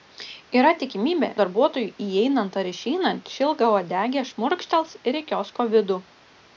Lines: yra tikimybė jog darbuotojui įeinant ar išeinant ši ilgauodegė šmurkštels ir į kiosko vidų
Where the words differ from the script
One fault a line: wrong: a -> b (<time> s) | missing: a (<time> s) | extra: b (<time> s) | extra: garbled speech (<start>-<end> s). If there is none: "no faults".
missing: jog (1.3 s)